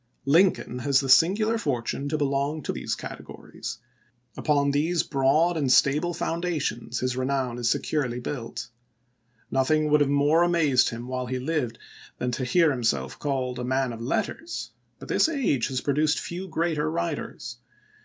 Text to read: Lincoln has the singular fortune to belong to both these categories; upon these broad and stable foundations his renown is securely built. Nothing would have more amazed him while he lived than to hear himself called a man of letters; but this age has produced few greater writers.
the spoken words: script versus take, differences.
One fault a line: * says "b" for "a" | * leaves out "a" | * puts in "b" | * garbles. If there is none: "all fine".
* leaves out "both"